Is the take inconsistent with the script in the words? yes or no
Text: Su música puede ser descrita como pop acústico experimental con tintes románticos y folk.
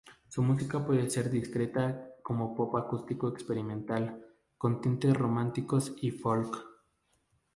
no